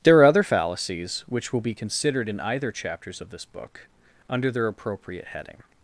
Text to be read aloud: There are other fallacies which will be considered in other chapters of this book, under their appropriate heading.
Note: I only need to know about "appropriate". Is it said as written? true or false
true